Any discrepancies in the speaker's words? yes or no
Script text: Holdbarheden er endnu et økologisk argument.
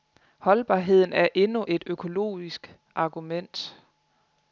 no